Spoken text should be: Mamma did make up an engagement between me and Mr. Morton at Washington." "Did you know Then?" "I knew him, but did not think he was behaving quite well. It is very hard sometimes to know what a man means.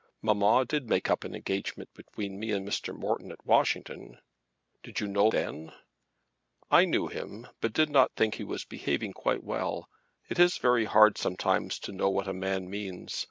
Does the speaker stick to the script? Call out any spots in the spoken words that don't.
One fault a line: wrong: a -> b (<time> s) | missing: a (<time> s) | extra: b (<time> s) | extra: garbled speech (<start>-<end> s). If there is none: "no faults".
no faults